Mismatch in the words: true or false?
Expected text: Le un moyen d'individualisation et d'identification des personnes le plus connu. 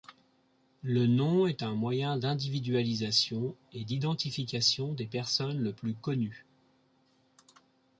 true